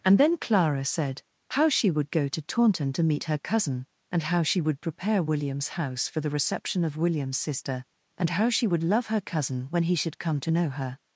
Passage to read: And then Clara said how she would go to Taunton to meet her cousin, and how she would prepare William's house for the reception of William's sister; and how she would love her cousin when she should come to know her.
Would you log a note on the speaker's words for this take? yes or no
yes